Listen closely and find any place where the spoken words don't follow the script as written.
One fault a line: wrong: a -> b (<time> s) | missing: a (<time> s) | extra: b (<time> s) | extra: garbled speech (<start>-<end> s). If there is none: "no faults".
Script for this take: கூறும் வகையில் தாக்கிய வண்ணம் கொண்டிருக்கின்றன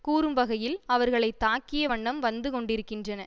extra: அவர்களை (0.9 s)
extra: வந்து (2.2 s)